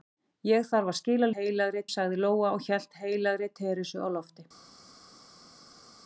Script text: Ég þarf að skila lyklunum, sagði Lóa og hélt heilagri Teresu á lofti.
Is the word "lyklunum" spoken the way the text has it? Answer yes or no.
no